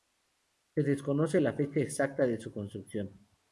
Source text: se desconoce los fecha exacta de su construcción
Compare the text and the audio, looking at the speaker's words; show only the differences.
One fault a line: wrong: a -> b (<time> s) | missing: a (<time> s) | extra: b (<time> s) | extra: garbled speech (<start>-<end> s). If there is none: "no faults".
wrong: los -> la (1.4 s)